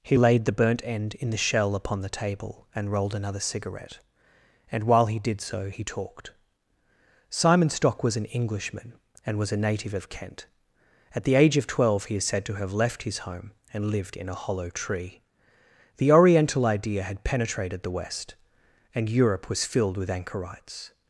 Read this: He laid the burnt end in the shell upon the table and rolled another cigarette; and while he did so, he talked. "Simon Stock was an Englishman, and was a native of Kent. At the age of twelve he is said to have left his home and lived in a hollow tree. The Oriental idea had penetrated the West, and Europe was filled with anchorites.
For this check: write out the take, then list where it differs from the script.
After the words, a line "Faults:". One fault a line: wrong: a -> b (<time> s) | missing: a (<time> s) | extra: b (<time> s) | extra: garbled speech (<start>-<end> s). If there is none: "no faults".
He laid the burnt end in the shell upon the table and rolled another cigarette; and while he did so, he talked. "Simon Stock was an Englishman, and was a native of Kent. At the age of twelve he is said to have left his home and lived in a hollow tree. The Oriental idea had penetrated the West, and Europe was filled with anchorites.
Faults:
no faults